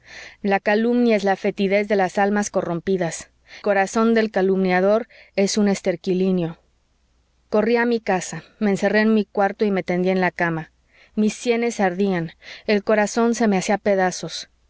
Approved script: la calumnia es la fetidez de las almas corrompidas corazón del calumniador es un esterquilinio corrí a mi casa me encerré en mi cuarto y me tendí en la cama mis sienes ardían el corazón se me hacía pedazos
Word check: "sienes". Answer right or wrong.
right